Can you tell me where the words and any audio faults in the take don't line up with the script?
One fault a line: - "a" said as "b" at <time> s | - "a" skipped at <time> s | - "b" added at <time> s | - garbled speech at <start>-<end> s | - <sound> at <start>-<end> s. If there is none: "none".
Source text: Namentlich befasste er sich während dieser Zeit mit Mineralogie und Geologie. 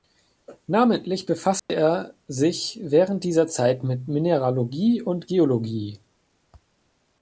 - dropout at 1.6-1.7 s